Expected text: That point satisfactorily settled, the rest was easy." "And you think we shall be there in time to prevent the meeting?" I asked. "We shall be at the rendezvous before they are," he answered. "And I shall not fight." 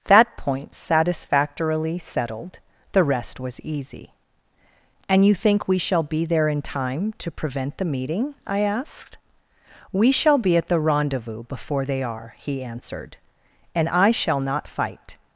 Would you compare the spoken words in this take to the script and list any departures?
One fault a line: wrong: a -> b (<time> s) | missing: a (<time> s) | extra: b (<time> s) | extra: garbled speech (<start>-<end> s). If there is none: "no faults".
no faults